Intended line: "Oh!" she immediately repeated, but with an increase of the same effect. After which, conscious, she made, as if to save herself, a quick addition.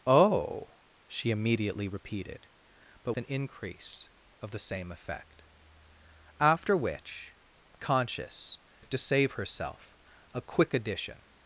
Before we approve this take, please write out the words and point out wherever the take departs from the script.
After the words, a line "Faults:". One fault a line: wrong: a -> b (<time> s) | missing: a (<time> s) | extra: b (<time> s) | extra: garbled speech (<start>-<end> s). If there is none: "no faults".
"Oh!" she immediately repeated, but an increase of the same effect. After which, conscious, if to save herself, a quick addition.
Faults:
missing: with (3.1 s)
missing: she made as (8.6 s)